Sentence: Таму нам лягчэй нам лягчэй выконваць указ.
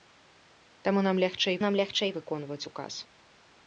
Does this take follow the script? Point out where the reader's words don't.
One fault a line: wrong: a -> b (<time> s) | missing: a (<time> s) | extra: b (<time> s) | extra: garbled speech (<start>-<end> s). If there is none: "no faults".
no faults